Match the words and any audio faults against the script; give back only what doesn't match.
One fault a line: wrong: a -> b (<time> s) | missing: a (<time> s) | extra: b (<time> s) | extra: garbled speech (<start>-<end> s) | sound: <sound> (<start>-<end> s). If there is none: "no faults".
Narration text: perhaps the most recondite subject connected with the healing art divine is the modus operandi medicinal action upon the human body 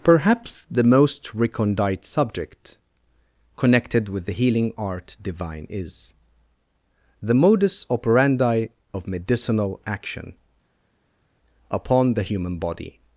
extra: of (8.9 s)